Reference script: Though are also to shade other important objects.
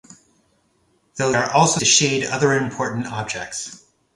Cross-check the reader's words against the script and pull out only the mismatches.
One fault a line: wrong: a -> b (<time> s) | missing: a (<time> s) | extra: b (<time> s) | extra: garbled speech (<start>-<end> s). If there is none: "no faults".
no faults